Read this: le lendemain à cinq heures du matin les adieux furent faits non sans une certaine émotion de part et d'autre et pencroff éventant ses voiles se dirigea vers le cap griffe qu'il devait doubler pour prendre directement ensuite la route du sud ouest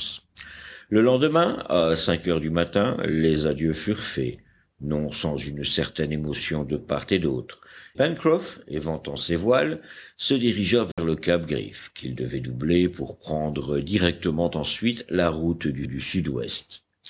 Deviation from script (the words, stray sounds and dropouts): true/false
true